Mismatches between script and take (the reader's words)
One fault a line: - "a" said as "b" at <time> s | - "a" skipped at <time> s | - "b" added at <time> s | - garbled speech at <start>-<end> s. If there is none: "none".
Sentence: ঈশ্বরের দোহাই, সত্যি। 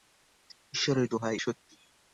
none